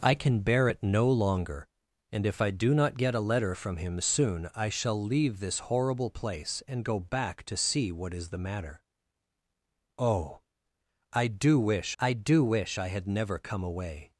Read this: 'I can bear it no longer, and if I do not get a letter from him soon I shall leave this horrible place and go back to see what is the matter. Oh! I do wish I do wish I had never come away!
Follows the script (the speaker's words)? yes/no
yes